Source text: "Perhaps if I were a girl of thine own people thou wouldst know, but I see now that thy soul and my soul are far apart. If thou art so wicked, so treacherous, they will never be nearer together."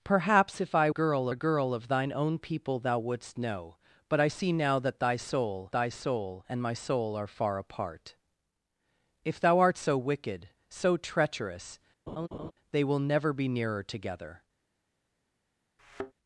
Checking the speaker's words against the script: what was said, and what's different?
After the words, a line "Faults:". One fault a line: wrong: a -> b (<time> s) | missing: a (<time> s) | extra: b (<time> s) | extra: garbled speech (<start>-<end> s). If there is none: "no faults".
"Perhaps if I girl a girl of thine own people thou wouldst know, but I see now that thy soul thy soul and my soul are far apart. If thou art so wicked, so treacherous, they will never be nearer together."
Faults:
wrong: were -> girl (0.9 s)
extra: thy soul (5.7 s)